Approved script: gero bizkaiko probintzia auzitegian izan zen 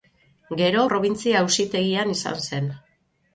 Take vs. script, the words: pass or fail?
fail